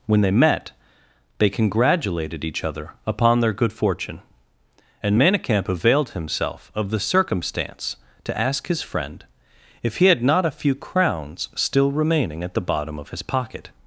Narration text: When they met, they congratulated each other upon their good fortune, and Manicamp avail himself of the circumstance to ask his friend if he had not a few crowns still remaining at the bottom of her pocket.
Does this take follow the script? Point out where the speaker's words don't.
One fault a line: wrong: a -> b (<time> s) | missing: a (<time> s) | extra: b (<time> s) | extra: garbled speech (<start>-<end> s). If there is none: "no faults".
wrong: avail -> availed (5.7 s)
wrong: her -> his (13.1 s)